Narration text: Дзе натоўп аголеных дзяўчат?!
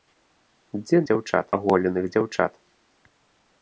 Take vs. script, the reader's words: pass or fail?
fail